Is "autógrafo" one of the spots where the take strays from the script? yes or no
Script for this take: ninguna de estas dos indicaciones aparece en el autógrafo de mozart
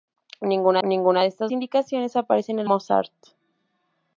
yes